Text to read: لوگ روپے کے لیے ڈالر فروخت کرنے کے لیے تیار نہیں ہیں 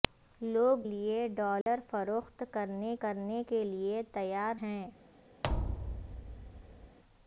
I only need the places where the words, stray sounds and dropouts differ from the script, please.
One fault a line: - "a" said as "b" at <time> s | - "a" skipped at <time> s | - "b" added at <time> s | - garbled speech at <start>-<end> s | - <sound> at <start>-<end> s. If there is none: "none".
- "روپے کے" skipped at 0.9 s
- dropout at 1.6-1.7 s
- "کرنے" added at 3.0 s
- "نہیں" skipped at 4.6 s
- thud at 5.4-7.0 s